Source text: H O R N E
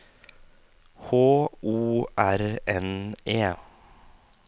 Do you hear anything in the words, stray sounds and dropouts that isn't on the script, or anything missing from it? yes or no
no